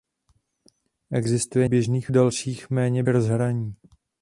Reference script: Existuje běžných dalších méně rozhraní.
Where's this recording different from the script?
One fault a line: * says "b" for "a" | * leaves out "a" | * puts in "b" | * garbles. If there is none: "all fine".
all fine